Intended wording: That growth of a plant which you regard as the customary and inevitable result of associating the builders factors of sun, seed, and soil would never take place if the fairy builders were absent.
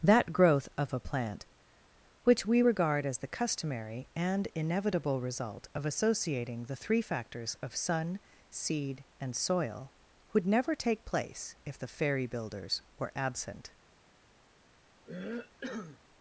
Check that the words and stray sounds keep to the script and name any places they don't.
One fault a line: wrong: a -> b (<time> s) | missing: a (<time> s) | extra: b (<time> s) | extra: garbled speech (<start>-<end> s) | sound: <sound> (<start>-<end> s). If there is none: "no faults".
wrong: you -> we (2.4 s)
wrong: builders -> three (6.7 s)
sound: cough (15.0-16.0 s)